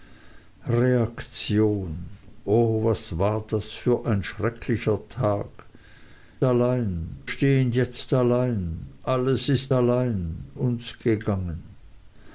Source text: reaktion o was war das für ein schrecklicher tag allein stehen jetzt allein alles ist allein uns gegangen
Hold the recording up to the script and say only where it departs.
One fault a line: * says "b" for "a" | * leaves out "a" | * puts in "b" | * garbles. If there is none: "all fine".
all fine